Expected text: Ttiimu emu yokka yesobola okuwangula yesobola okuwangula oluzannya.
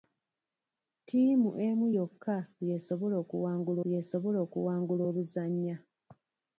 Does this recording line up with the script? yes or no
yes